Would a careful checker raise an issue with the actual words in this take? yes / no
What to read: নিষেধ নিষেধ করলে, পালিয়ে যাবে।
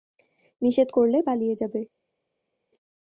yes